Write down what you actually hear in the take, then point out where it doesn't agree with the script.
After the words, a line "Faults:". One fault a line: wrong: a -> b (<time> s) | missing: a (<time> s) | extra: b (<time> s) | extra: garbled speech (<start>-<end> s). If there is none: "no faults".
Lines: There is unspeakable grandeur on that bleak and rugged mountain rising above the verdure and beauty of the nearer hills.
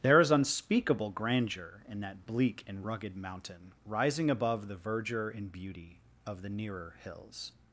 There is unspeakable grandeur in that bleak and rugged mountain rising above the verdure and beauty of the nearer hills.
Faults:
wrong: on -> in (1.9 s)